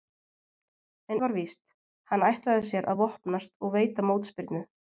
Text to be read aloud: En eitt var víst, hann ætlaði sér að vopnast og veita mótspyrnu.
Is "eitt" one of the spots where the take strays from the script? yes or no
yes